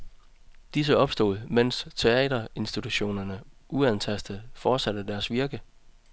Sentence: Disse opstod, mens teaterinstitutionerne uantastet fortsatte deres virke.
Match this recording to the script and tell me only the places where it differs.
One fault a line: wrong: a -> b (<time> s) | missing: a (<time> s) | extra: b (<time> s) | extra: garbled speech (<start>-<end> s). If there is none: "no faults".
no faults